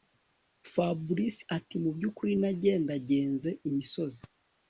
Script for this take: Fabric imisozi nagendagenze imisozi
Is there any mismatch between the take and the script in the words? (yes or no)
yes